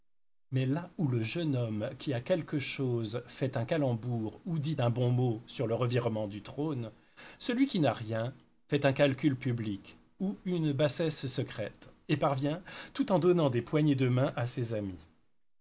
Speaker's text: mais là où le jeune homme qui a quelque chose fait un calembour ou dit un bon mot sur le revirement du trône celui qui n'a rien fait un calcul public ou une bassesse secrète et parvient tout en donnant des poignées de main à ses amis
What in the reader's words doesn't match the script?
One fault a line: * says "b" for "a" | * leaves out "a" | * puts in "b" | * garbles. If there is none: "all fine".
all fine